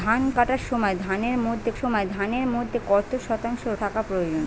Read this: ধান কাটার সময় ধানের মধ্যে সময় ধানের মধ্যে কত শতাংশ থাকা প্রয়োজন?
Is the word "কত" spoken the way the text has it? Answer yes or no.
yes